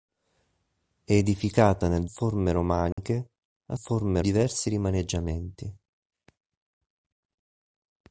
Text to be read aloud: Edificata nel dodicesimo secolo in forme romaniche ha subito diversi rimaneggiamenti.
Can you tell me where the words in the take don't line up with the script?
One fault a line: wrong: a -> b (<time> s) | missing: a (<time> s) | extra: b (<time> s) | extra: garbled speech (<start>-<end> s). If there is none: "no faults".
missing: dodicesimo secolo in (2.0 s)
wrong: subito -> forme (3.8 s)